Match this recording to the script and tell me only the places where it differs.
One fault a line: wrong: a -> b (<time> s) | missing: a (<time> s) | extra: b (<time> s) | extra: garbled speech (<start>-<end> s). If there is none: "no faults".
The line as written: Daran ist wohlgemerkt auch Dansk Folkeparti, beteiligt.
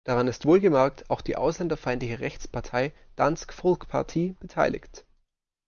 extra: die ausländerfeindliche Rechtspartei (1.2 s)